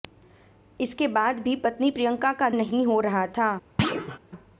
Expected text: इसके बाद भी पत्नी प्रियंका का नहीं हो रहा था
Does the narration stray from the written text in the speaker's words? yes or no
no